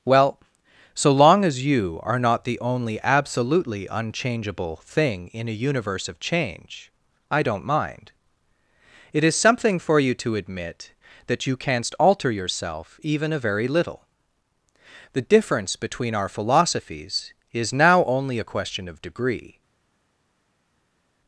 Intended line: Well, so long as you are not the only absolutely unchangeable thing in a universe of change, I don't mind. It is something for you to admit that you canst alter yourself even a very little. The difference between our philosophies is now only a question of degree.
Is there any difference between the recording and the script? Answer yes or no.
no